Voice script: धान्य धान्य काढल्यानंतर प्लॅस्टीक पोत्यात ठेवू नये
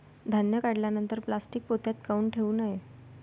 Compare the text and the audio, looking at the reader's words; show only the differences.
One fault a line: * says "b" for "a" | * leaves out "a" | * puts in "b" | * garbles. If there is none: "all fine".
* leaves out "धान्य"
* puts in "काऊन"